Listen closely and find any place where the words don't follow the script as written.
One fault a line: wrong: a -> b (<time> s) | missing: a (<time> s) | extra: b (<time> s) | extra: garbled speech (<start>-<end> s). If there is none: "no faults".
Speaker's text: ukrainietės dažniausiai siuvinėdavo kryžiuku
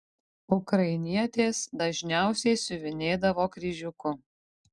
no faults